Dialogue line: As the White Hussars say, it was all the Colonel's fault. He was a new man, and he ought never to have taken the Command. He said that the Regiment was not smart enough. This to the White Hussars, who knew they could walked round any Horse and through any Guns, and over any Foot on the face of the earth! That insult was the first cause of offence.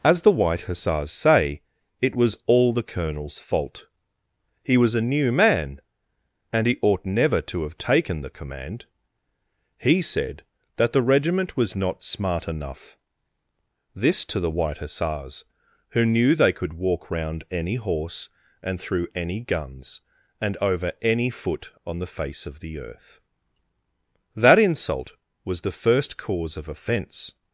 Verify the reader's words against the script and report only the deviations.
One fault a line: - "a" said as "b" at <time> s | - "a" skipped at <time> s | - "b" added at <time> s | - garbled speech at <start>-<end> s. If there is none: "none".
- "walked" said as "walk" at 16.7 s